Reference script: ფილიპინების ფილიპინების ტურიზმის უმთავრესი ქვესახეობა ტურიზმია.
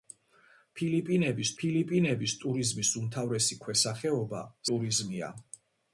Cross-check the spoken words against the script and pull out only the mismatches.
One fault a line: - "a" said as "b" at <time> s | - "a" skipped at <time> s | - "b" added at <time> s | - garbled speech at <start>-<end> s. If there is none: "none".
none